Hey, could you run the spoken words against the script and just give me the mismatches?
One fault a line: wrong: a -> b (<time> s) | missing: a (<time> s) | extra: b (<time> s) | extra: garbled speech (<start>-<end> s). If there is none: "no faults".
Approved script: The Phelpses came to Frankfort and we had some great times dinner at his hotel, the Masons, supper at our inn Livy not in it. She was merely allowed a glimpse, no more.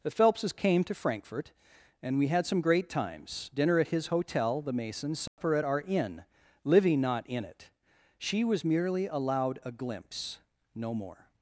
no faults